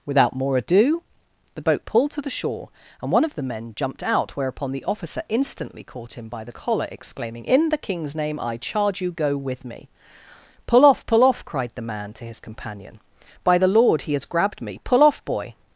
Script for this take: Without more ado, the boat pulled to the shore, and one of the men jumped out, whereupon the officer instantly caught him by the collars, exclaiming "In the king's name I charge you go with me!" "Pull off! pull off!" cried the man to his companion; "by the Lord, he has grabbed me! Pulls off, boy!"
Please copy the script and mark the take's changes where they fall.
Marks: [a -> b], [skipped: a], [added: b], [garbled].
Without more ado, the boat pulled to the shore, and one of the men jumped out, whereupon the officer instantly caught him by the [collars, -> collar] exclaiming "In the king's name I charge you go with me!" "Pull off! pull off!" cried the man to his companion; "by the Lord, he has grabbed me! [Pulls -> Pull] off, boy!"